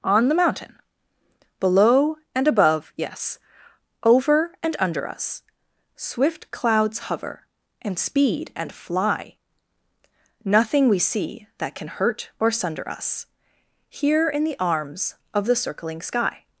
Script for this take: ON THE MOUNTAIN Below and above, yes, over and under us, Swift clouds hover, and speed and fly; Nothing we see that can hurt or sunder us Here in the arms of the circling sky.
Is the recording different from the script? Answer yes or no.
no